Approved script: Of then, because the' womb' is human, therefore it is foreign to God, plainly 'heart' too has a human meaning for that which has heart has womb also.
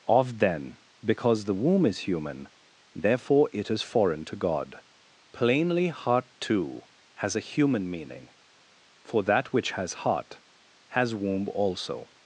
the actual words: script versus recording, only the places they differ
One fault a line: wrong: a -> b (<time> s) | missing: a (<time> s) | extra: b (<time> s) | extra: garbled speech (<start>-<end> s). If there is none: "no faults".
no faults